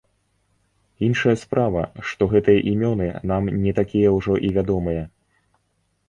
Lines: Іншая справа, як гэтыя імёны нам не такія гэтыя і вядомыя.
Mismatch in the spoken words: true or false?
true